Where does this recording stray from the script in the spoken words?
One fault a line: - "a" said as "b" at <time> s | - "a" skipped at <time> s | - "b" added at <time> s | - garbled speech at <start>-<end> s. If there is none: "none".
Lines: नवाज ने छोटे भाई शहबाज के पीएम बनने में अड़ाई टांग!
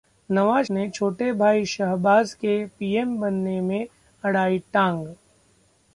none